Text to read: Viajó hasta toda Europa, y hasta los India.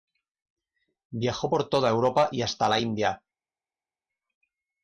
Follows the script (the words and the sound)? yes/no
no